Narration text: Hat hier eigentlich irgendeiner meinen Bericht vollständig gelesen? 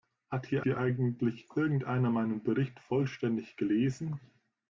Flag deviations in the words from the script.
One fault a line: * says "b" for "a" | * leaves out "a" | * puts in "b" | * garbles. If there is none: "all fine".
* puts in "hier"